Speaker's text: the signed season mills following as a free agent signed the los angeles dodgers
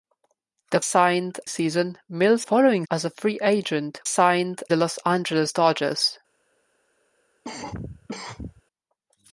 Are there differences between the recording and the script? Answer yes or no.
no